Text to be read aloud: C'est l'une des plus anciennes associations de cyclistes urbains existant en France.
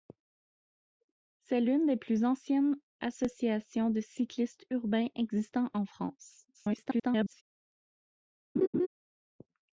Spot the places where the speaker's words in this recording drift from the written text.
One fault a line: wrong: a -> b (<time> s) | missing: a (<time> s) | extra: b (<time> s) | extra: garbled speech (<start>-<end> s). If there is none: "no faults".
extra: garbled speech (6.5-7.4 s)